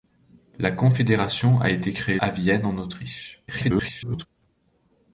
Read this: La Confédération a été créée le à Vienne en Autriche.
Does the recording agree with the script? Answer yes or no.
no